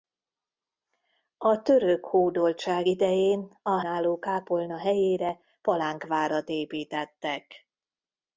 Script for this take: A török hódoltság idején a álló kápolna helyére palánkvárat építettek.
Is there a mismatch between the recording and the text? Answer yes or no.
no